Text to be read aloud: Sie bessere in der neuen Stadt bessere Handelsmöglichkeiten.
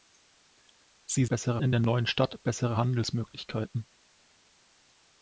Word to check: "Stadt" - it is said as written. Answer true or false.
true